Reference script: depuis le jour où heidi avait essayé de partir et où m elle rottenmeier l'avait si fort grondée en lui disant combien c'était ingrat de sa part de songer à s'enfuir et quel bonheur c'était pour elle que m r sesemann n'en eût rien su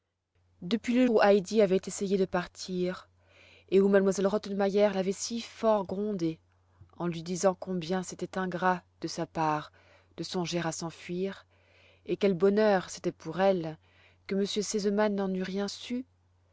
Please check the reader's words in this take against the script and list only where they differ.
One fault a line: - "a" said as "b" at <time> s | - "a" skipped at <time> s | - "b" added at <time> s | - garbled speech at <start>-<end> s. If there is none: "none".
- "jour" skipped at 1.1 s